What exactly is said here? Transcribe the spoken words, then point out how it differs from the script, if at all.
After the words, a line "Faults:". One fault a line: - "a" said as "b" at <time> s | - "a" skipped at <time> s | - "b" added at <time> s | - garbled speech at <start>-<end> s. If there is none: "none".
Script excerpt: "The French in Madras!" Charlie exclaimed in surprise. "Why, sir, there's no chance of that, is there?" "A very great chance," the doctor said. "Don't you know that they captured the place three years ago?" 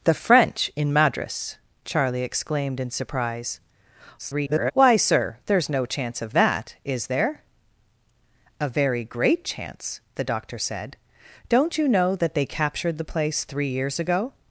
"The French in Madras!" Charlie exclaimed in surprise. [garbled] "Why, sir, there's no chance of that, is there?" "A very great chance," the doctor said. "Don't you know that they captured the place three years ago?"
Faults:
- garbled speech at 4.2-4.7 s